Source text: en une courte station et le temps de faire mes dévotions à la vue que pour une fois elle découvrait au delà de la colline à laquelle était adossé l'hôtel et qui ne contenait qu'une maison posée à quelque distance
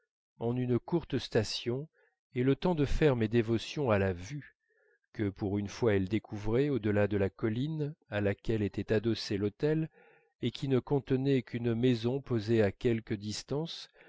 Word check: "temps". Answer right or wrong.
right